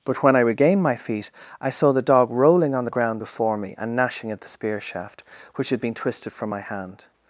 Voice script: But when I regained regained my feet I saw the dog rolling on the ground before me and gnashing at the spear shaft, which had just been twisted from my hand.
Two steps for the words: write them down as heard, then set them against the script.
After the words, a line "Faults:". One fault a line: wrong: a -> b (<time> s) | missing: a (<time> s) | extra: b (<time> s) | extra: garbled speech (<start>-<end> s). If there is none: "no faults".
But when I regained my feet I saw the dog rolling on the ground before me and gnashing at the spear shaft, which had been twisted from my hand.
Faults:
missing: regained (0.8 s)
missing: just (5.8 s)